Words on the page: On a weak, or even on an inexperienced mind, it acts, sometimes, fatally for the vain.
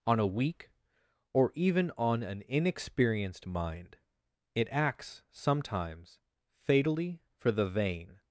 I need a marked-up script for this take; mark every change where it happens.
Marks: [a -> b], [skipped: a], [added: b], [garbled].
On a weak, or even on an inexperienced mind, it acts, sometimes, fatally for the vain.